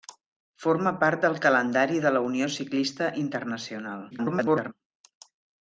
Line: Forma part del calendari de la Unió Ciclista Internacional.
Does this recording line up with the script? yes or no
no